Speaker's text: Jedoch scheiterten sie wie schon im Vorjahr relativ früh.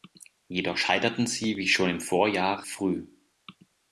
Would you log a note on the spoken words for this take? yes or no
yes